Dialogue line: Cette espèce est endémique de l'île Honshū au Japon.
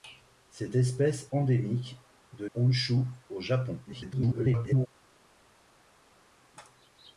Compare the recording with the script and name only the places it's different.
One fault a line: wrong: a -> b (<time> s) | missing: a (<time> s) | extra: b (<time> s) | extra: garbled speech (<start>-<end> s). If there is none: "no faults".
missing: est (1.3 s)
missing: l'île (2.4 s)
extra: garbled speech (3.8-4.9 s)